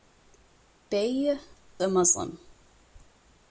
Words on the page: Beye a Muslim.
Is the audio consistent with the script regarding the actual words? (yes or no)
yes